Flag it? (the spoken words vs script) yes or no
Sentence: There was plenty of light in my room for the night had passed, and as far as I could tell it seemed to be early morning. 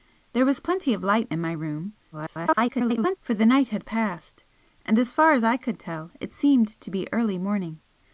yes